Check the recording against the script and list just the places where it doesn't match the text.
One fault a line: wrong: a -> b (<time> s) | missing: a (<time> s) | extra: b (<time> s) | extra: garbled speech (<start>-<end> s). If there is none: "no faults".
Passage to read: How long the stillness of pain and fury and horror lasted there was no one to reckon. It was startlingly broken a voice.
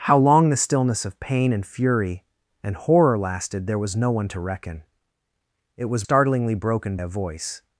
no faults